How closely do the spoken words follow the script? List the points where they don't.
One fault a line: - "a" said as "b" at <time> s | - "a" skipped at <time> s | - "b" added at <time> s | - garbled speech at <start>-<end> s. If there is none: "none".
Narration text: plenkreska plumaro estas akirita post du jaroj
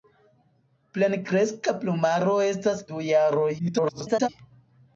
- "akirita post" skipped at 2.8 s
- garbled speech at 3.6-4.3 s